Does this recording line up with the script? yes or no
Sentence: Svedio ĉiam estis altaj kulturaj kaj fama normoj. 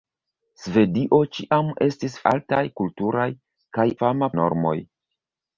yes